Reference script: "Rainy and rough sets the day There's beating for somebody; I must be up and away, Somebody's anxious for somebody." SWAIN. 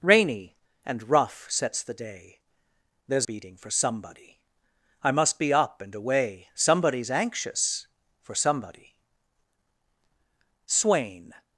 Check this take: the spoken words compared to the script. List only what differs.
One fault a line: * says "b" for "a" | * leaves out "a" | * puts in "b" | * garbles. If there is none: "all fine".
all fine